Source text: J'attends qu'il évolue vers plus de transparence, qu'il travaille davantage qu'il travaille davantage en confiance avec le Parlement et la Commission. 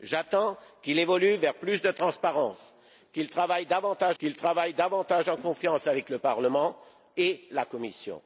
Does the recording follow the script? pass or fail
pass